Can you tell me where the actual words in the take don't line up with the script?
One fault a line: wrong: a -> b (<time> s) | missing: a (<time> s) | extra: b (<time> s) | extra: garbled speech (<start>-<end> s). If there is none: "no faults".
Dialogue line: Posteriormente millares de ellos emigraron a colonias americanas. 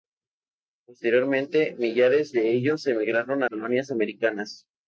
no faults